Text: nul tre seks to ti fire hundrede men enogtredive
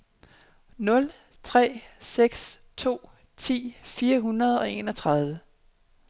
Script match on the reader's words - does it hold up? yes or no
no